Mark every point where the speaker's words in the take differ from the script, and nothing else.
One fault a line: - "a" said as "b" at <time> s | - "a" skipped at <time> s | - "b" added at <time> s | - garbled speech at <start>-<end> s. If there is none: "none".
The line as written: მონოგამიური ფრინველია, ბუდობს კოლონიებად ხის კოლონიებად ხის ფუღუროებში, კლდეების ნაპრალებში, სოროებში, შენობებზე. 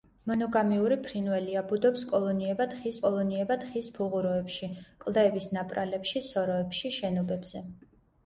none